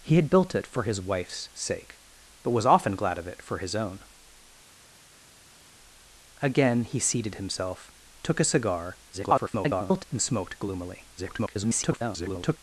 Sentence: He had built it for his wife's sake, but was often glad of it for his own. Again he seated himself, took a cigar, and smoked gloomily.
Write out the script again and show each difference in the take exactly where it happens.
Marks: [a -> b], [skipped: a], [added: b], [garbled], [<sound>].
He had built it for his wife's sake, but was often glad of it for his own. Again he seated himself, took a cigar, [garbled] and smoked gloomily. [garbled]